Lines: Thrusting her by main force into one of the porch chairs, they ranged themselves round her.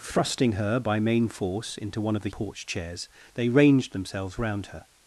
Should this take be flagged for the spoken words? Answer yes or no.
no